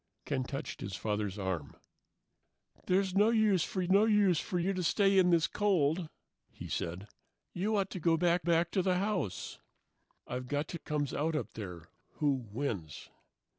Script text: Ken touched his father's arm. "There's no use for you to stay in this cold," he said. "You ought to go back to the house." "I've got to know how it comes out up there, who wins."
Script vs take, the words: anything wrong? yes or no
yes